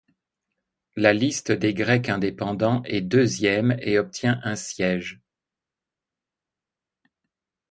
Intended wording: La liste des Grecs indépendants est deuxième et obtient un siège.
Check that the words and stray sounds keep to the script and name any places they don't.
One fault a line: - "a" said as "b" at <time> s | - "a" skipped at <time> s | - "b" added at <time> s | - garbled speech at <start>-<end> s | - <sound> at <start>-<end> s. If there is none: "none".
none